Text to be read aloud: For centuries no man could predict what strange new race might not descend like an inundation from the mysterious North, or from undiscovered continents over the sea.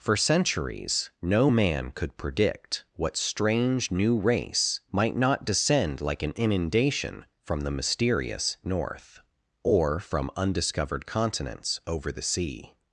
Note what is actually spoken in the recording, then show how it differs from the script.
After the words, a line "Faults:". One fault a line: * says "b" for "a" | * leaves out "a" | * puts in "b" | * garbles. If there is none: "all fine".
For centuries no man could predict what strange new race might not descend like an inundation from the mysterious North, or from undiscovered continents over the sea.
Faults:
all fine